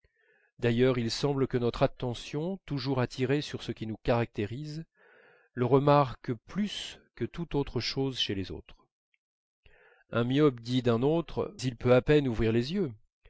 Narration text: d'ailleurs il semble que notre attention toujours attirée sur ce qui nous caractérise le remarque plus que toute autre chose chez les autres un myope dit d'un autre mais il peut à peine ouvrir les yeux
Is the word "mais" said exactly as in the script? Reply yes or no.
no